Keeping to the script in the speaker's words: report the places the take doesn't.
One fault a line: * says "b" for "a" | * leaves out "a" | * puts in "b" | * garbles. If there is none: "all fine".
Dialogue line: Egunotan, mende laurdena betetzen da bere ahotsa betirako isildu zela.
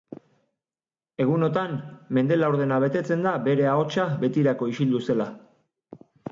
all fine